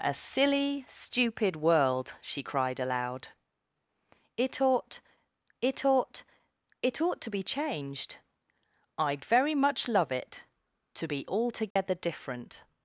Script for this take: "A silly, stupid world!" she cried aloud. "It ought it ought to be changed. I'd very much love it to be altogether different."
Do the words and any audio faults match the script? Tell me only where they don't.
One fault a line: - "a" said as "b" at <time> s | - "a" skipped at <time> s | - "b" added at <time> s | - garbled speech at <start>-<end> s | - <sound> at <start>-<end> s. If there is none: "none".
- "it ought" added at 6.8 s
- dropout at 11.7-11.8 s